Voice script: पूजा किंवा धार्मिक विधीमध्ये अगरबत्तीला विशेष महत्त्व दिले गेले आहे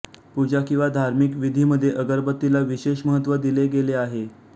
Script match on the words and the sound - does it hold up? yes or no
yes